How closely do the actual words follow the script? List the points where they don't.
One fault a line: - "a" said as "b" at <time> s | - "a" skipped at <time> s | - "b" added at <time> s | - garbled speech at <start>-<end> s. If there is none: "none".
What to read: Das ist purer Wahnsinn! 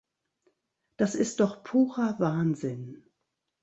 - "doch" added at 1.4 s